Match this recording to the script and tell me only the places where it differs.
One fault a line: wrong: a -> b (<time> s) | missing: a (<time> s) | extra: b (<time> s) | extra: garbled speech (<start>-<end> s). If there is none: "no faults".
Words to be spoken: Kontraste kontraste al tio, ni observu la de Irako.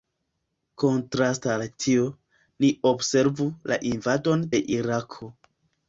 missing: kontraste (1.5 s)
extra: invadon (3.9 s)